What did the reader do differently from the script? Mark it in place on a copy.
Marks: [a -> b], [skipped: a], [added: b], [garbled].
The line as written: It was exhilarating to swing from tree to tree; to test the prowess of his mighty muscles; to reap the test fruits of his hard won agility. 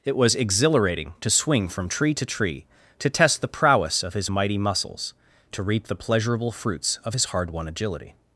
It was exhilarating to swing from tree to tree; to test the prowess of his mighty muscles; to reap the [test -> pleasurable] fruits of his hard won agility.